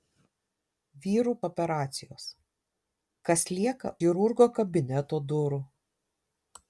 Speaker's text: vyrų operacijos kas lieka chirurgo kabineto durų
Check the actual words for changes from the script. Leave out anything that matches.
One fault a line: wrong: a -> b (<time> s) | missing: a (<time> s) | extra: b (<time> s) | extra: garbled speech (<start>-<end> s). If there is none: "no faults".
no faults